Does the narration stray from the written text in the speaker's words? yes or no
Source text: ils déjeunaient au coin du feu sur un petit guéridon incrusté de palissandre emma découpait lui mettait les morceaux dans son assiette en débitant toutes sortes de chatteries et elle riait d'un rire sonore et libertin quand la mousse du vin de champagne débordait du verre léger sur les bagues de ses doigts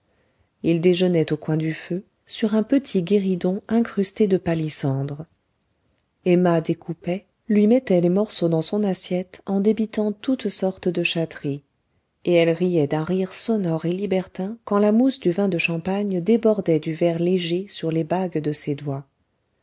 no